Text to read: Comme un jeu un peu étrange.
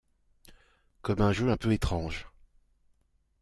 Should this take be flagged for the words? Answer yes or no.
no